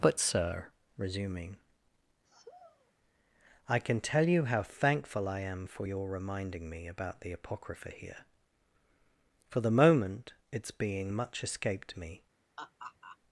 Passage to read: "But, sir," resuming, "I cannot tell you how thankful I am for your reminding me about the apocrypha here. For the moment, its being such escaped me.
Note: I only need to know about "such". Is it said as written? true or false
false